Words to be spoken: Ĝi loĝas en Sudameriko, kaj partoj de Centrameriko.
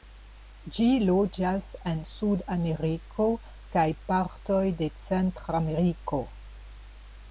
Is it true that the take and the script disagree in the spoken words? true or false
false